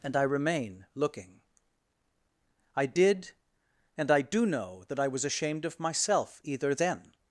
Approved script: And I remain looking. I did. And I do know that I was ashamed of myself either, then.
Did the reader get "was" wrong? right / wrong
right